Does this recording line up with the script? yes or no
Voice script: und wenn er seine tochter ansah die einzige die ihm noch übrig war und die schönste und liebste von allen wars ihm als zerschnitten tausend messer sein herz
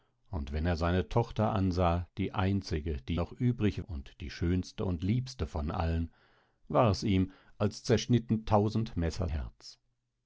no